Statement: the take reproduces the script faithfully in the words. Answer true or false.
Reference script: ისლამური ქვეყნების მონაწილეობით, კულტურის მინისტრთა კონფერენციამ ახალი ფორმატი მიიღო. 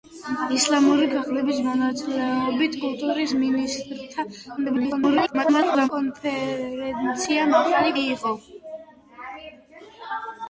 false